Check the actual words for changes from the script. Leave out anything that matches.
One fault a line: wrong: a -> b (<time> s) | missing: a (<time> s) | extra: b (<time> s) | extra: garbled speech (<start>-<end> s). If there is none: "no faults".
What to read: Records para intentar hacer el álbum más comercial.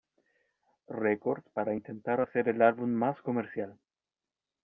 no faults